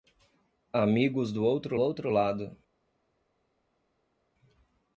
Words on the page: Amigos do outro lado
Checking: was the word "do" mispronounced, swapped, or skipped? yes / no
no